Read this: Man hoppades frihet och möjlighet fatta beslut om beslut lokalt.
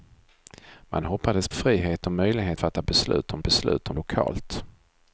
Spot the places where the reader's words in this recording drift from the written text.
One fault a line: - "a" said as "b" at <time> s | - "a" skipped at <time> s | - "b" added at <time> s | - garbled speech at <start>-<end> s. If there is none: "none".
none